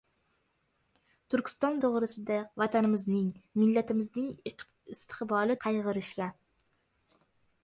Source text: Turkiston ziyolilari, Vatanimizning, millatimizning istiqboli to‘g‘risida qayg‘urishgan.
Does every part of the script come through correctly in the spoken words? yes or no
no